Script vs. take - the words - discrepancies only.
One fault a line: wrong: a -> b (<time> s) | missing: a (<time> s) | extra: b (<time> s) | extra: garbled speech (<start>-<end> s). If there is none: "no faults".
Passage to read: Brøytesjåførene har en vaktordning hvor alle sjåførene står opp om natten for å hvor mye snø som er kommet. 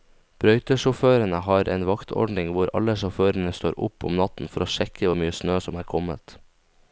extra: sjekke (4.8 s)